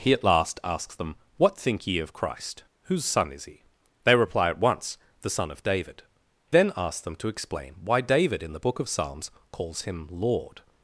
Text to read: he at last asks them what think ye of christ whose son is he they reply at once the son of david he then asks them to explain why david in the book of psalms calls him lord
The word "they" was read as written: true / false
true